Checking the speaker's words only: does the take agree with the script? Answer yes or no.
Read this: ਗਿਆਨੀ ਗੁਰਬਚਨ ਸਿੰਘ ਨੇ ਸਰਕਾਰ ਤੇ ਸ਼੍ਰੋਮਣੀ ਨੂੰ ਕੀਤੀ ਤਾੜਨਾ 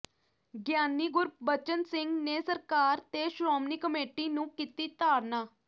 no